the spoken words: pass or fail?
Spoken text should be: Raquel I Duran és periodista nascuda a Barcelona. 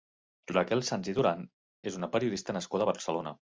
fail